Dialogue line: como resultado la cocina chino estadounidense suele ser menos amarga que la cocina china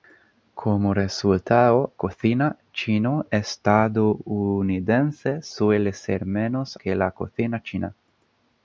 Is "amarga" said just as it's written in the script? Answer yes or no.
no